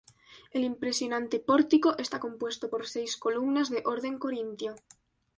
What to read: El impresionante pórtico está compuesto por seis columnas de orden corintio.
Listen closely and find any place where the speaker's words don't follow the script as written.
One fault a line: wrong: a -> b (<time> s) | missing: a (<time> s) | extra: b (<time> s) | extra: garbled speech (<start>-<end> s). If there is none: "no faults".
no faults